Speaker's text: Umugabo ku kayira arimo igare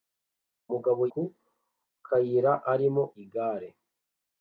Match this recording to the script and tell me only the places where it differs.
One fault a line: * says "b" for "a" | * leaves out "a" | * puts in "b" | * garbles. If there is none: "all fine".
all fine